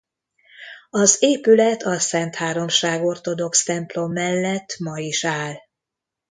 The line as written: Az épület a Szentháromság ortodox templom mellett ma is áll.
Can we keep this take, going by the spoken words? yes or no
yes